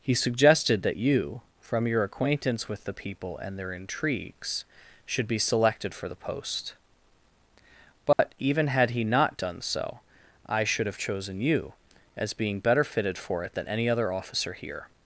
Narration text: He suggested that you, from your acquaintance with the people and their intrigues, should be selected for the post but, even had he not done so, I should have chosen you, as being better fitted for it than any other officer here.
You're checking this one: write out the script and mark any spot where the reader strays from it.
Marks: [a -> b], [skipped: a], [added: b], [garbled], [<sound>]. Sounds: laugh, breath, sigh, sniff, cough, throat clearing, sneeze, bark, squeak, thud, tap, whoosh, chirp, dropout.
He suggested that you, from your acquaintance with the people and their intrigues, should be selected for the post but, [dropout] even had he not done so, I should have chosen you, as being better fitted for it than any other officer here.